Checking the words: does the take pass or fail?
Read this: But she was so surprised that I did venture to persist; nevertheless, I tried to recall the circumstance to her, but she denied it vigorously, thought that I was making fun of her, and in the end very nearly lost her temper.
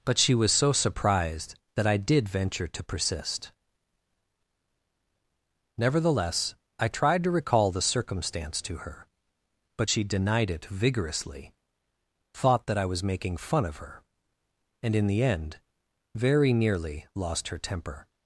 pass